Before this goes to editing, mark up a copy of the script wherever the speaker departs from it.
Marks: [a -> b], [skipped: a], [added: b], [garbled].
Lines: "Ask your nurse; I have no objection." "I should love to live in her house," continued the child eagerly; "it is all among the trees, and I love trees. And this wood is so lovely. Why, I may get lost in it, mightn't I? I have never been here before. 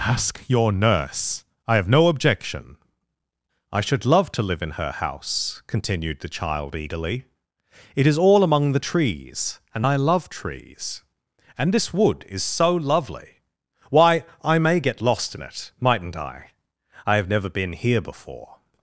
"Ask your nurse; I have no objection." "I should love to live in her house," continued the child eagerly; "it is all among the trees, and I love trees. And this wood is so lovely. Why, I may get lost in it, mightn't I? I have never been here before.